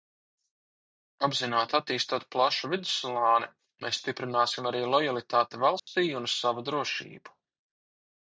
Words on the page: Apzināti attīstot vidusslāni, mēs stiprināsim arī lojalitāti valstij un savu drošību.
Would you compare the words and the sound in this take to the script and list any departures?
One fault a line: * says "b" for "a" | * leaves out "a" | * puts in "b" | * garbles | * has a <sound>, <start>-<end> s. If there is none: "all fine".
* puts in "plašu"
* has a dropout, 5.8-5.9 s